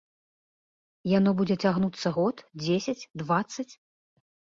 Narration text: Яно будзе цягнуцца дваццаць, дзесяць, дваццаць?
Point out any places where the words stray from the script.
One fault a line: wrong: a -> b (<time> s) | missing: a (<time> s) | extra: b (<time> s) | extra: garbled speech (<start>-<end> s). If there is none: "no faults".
wrong: дваццаць -> год (2.2 s)